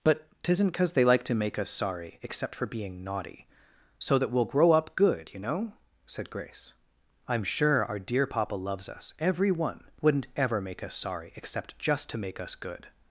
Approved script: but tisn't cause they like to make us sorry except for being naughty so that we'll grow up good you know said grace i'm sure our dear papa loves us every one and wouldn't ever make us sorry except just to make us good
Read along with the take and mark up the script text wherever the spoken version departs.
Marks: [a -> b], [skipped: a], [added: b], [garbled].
but tisn't cause they like to make us sorry except for being naughty so that we'll grow up good you know said grace i'm sure our dear papa loves us every one [skipped: and] wouldn't ever make us sorry except just to make us good